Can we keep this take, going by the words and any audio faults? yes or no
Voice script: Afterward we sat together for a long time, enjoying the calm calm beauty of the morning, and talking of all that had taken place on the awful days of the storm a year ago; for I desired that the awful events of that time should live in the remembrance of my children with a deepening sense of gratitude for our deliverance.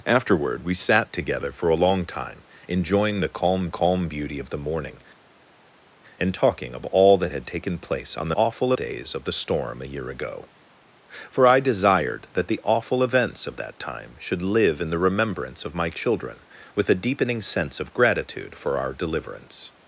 yes